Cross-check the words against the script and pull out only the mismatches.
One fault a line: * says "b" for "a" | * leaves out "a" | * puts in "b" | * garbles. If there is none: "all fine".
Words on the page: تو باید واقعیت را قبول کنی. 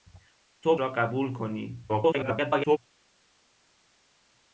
* leaves out "باید واقعیت"
* garbles